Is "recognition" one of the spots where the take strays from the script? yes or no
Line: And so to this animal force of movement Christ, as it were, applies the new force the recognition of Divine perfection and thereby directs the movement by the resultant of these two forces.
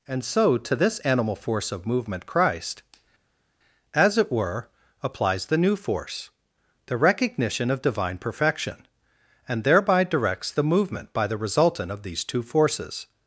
no